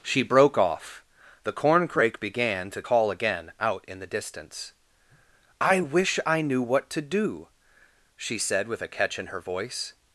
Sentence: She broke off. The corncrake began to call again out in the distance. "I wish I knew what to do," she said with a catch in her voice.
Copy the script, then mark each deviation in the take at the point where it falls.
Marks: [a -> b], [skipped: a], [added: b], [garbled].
She broke off. The corncrake began to call again out in the distance. "I wish I knew what to do," she said with a catch in her voice.